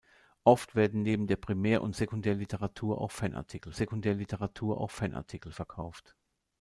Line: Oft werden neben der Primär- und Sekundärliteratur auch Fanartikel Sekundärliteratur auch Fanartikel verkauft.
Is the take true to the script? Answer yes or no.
yes